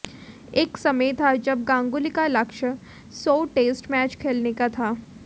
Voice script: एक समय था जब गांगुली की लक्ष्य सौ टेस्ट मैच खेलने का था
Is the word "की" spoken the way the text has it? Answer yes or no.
no